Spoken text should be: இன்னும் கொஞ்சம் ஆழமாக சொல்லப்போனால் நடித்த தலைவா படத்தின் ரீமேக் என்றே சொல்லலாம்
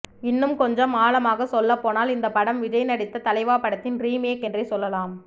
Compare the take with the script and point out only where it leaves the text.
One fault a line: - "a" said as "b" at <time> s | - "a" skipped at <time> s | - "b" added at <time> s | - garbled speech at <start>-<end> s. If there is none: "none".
- "இந்த படம் விஜய்" added at 2.1 s